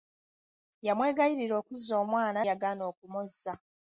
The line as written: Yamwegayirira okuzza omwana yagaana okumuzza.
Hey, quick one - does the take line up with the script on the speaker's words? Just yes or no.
yes